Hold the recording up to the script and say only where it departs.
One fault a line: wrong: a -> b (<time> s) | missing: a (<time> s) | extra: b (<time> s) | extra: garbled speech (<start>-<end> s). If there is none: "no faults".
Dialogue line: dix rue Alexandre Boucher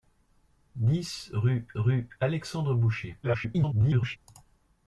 extra: rue (1.7 s)
extra: garbled speech (3.2-4.2 s)